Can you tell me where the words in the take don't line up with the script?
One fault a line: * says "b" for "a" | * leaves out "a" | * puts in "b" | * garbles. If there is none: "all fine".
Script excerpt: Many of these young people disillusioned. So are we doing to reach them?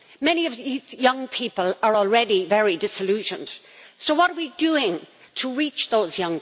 * puts in "are already very"
* puts in "what"